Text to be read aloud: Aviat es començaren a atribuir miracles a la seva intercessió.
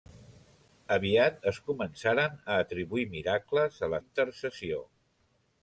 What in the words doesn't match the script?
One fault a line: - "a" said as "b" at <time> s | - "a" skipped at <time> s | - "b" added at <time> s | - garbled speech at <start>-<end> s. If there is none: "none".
- "seva" skipped at 4.0 s